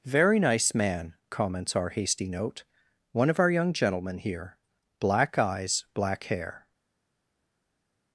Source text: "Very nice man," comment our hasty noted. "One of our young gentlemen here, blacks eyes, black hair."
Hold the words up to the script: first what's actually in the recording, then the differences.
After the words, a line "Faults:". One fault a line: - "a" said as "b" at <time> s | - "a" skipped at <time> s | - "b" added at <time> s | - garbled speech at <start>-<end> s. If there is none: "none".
"Very nice man," comments our hasty note. "One of our young gentlemen here, black eyes, black hair."
Faults:
- "comment" said as "comments" at 1.3 s
- "noted" said as "note" at 2.3 s
- "blacks" said as "black" at 5.0 s